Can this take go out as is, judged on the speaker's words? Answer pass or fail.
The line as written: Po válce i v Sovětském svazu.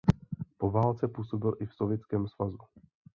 fail